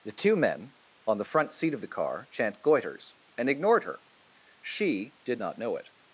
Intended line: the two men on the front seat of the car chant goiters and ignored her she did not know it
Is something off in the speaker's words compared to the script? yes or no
no